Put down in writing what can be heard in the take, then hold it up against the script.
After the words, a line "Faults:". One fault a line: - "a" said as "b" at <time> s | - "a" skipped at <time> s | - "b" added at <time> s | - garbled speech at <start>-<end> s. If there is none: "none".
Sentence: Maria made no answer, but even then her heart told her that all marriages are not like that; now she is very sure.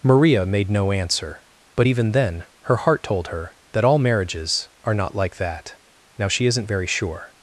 Maria made no answer, but even then her heart told her that all marriages are not like that; now she isn't very sure.
Faults:
- "is" said as "isn't" at 6.5 s